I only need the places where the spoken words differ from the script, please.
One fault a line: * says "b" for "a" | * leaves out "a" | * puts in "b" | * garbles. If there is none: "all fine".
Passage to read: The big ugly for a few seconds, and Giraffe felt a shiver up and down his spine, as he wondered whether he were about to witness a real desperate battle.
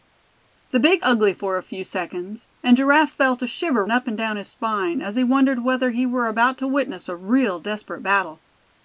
all fine